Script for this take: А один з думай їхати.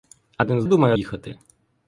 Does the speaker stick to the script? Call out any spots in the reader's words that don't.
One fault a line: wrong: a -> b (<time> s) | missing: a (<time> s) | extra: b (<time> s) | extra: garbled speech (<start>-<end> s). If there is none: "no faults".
no faults